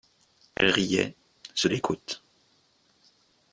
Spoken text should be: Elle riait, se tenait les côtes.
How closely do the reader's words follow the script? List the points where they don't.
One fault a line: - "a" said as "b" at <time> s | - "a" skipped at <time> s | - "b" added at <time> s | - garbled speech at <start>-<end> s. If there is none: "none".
- "tenait" skipped at 1.7 s